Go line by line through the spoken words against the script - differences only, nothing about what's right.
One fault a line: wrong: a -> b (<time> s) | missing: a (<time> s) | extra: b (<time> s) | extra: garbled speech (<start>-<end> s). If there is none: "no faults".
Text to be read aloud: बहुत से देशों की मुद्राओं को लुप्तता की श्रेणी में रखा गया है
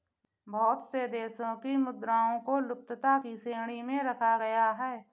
no faults